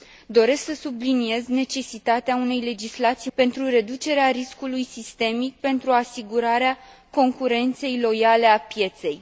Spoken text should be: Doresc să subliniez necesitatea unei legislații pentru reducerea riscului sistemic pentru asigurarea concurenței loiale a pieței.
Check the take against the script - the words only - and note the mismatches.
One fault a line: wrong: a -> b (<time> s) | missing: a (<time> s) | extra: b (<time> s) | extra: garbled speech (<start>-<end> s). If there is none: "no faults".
no faults